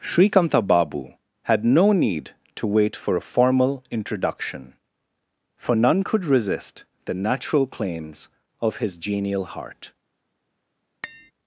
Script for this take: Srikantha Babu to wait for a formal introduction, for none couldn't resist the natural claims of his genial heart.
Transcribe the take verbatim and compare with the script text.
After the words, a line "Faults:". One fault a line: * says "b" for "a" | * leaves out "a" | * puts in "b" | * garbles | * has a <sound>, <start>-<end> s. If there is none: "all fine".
Srikantha Babu had no need to wait for a formal introduction, for none could resist the natural claims of his genial heart.
Faults:
* puts in "had no need"
* says "could" for "couldn't"
* has a tap, 11.0-11.3 s